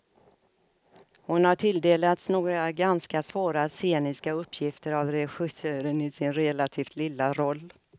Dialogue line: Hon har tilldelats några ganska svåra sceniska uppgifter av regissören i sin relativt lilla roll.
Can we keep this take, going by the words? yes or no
yes